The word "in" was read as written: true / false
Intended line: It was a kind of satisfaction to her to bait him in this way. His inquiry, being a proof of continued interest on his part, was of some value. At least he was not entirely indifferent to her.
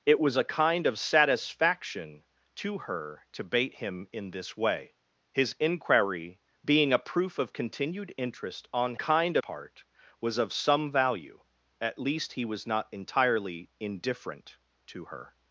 true